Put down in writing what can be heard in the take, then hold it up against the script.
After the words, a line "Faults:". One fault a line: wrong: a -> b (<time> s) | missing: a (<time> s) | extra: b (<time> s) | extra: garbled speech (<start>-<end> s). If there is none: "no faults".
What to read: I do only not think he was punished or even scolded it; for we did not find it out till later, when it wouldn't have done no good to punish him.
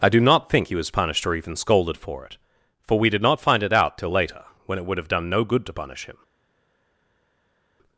I do not think he was punished or even scolded for it; for we did not find it out till later, when it would have done no good to punish him.
Faults:
missing: only (0.2 s)
extra: for (2.0 s)
wrong: wouldn't -> would (4.8 s)